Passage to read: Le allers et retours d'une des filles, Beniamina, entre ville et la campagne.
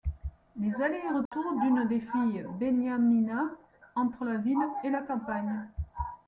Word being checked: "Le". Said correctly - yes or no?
no